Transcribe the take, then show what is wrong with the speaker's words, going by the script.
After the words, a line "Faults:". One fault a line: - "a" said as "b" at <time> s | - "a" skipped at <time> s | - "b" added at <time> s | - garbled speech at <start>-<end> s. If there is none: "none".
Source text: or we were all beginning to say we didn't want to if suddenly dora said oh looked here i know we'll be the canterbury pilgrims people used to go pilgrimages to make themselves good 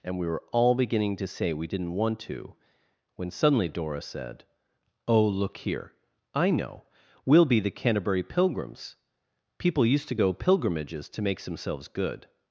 and we were all beginning to say we didn't want to when suddenly dora said oh look here i know we'll be the canterbury pilgrims people used to go pilgrimages to make themselves good
Faults:
- "or" said as "and" at 0.0 s
- "if" said as "when" at 3.2 s
- "looked" said as "look" at 5.3 s